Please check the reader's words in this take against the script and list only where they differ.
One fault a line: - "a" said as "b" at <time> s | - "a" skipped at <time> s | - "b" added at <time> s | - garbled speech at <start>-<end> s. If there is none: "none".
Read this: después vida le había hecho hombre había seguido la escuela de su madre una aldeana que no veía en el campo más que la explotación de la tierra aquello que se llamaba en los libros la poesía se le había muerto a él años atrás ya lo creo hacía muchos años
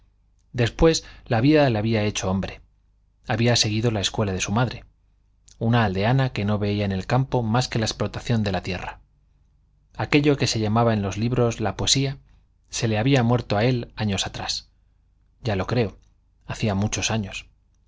- "la" added at 1.3 s